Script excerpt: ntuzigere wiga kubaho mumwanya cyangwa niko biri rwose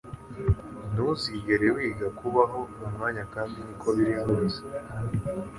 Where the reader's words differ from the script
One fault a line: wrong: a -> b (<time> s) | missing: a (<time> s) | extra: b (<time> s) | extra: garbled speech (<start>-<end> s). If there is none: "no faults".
wrong: cyangwa -> kandi (3.3 s)